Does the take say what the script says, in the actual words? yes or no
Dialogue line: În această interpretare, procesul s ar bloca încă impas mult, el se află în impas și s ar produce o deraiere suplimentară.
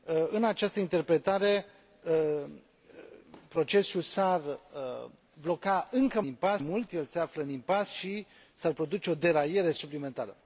yes